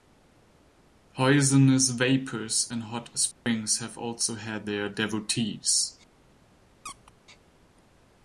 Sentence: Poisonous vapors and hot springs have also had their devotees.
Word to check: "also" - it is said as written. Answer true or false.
true